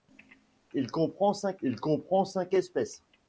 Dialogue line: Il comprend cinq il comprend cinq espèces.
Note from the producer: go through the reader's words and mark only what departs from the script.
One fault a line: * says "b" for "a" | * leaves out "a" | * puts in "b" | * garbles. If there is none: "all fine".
all fine